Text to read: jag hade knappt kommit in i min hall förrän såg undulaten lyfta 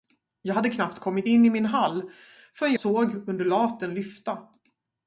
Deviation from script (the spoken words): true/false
false